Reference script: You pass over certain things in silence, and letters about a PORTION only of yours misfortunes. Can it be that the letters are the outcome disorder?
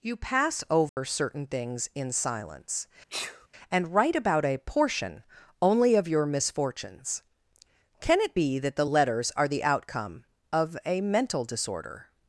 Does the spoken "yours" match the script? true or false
false